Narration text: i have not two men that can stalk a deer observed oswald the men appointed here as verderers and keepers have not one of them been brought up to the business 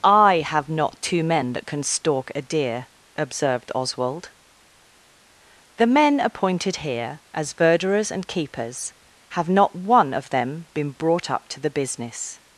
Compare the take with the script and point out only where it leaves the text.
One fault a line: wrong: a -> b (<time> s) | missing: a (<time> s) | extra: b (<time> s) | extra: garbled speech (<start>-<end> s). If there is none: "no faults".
no faults